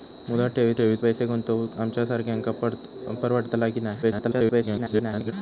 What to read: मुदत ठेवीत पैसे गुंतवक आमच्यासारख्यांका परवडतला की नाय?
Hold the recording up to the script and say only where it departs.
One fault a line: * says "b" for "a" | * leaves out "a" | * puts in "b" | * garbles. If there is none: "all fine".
* puts in "ठेवीत"
* garbles